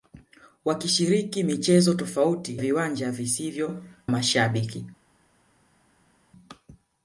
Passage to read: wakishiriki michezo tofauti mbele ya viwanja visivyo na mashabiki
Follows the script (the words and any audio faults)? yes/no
no